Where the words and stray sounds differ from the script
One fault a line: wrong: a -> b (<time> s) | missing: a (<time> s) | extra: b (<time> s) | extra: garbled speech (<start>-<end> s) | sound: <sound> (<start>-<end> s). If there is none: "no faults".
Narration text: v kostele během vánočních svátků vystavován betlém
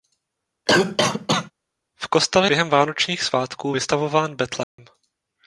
sound: cough (0.7-1.5 s)
sound: dropout (4.6-4.8 s)